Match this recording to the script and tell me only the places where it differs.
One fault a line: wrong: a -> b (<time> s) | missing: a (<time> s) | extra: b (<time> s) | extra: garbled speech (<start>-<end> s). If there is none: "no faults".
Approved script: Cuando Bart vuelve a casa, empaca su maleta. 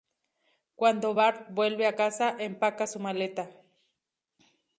no faults